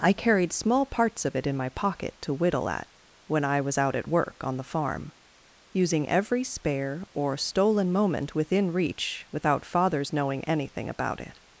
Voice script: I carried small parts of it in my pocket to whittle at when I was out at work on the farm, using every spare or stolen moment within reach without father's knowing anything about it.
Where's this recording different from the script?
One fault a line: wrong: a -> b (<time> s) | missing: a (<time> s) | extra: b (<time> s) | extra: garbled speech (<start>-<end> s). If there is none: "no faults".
no faults